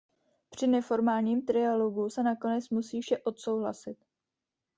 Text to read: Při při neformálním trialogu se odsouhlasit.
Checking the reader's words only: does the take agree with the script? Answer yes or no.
no